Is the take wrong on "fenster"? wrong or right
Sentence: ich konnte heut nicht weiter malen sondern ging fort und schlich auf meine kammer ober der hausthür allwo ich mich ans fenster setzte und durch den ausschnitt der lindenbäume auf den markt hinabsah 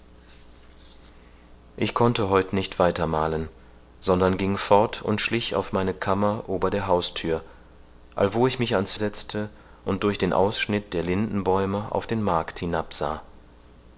wrong